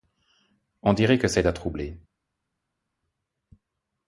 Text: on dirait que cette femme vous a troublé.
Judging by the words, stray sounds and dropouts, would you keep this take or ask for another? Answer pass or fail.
fail